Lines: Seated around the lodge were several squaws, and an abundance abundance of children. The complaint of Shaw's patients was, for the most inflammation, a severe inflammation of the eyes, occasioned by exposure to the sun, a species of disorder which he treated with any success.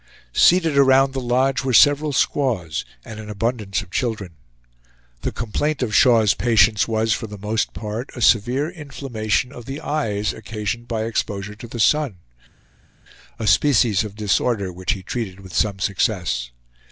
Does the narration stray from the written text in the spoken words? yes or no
yes